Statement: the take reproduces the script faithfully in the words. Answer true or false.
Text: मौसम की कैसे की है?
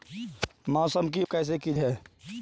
true